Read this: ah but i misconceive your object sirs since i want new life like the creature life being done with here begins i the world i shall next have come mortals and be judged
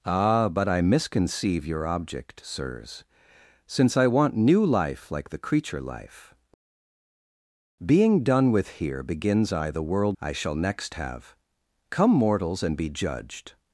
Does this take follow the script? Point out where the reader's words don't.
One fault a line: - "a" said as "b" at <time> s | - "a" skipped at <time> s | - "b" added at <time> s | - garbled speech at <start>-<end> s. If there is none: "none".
none